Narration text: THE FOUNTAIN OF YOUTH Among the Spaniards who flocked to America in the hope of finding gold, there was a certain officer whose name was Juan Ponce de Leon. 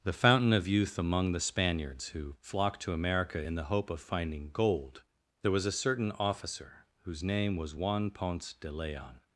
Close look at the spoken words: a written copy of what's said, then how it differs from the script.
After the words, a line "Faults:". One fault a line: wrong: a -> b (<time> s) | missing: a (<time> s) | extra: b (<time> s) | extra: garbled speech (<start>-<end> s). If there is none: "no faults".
THE FOUNTAIN OF YOUTH Among the Spaniards who flocked to America in the hope of finding gold, there was a certain officer whose name was Juan Ponce de Leon.
Faults:
no faults